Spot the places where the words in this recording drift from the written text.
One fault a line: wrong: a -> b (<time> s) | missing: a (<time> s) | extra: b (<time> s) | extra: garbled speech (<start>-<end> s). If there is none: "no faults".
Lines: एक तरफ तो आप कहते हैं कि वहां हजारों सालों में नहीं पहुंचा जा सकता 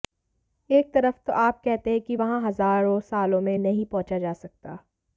no faults